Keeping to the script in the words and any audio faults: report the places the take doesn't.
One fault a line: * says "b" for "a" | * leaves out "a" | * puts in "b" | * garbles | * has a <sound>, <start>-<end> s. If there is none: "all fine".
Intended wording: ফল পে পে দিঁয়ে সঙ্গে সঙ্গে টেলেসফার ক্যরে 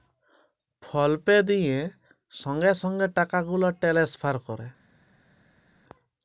* leaves out "পে"
* puts in "টাকা গুলা"